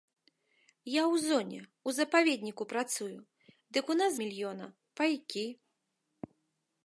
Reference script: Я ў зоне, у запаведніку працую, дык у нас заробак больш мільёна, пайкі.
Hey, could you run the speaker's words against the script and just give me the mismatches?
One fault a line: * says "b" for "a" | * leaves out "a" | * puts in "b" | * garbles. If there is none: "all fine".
* leaves out "заробак больш"